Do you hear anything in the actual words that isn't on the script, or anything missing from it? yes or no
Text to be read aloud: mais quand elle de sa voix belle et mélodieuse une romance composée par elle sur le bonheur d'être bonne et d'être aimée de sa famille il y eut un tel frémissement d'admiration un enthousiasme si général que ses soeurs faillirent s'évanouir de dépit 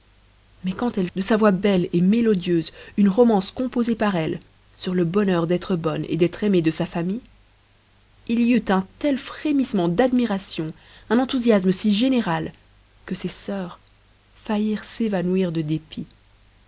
no